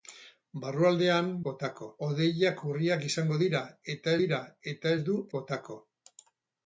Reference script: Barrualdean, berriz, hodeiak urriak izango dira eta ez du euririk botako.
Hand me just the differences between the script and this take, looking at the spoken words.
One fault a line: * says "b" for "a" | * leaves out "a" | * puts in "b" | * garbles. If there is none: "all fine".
* says "botako" for "berriz"
* puts in "dira eta"
* leaves out "euririk"